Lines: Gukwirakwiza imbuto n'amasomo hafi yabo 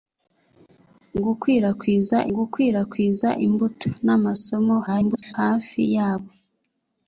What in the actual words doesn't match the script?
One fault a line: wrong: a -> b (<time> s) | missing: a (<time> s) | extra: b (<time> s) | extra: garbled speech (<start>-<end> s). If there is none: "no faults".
extra: gukwirakwiza (2.3 s)
extra: garbled speech (4.9-5.3 s)